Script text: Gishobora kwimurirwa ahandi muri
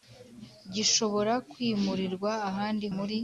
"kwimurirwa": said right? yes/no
yes